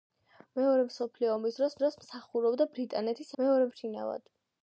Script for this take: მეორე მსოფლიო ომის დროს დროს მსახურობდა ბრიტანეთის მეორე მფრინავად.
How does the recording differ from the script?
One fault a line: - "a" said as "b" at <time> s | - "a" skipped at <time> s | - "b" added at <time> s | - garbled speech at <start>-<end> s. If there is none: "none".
none